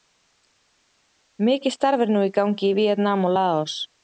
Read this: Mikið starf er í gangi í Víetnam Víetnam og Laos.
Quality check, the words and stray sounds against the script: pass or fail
fail